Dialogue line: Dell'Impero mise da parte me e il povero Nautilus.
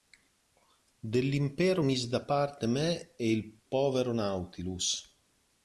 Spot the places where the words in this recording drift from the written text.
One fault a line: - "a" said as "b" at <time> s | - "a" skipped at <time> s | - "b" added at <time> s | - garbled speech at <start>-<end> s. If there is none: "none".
none